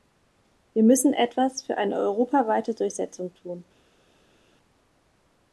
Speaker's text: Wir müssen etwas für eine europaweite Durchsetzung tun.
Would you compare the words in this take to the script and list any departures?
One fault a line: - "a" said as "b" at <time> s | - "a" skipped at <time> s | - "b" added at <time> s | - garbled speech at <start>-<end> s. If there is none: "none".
none